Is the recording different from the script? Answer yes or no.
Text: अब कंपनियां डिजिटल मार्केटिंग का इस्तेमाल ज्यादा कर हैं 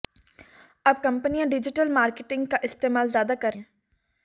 no